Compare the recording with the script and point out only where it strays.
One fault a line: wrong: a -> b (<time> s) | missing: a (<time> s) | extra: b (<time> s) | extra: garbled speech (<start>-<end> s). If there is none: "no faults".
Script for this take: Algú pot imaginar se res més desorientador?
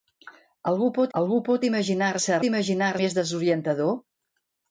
extra: algú pot (1.2 s)
wrong: res -> imaginar (2.5 s)